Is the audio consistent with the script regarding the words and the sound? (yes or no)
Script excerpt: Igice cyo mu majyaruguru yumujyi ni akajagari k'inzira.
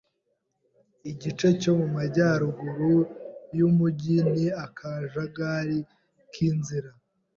yes